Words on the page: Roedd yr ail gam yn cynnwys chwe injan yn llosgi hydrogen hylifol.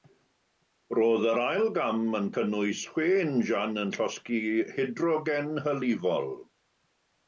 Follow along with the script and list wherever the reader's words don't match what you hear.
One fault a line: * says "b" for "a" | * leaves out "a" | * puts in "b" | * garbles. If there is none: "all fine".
all fine